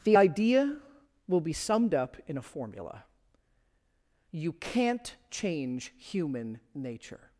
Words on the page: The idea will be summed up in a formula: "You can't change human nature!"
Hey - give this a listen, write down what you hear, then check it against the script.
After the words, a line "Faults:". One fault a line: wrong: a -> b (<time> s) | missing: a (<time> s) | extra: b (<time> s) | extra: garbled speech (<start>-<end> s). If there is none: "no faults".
The idea will be summed up in a formula: "You can't change human nature!"
Faults:
no faults